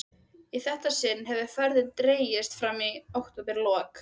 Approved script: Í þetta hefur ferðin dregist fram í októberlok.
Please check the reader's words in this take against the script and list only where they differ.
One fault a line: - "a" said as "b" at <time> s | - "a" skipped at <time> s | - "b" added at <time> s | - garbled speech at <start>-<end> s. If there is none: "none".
- "sinn" added at 1.0 s